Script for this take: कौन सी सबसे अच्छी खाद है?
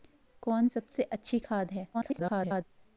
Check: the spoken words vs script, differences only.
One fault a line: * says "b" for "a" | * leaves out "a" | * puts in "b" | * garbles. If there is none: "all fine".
* leaves out "सी"
* garbles